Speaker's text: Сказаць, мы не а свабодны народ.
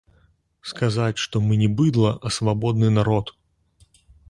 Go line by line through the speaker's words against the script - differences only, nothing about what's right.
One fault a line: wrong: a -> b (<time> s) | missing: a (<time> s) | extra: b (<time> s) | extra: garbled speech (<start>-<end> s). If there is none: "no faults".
extra: што (1.2 s)
extra: быдла (1.8 s)